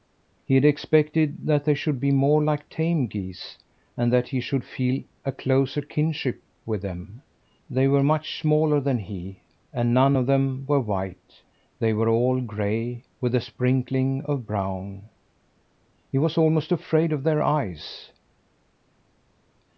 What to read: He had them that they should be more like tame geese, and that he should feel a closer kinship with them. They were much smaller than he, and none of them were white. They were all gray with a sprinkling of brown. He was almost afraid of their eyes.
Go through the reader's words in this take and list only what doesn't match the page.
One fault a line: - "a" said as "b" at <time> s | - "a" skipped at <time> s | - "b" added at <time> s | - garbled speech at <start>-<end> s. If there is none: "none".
- "them" said as "expected" at 0.7 s